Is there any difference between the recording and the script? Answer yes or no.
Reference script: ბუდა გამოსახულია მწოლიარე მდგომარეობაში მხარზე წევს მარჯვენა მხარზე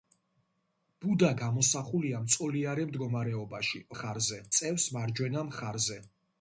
no